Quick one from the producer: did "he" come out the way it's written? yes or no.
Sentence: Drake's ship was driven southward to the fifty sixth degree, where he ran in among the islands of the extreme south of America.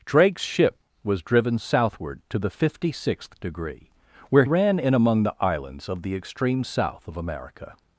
no